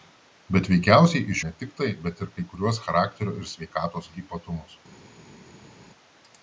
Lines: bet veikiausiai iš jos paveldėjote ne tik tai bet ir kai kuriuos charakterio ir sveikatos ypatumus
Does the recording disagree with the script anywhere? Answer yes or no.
yes